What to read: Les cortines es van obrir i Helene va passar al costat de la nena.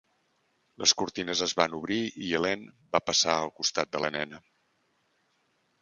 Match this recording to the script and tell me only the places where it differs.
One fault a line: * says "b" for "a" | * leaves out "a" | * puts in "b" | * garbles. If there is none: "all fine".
all fine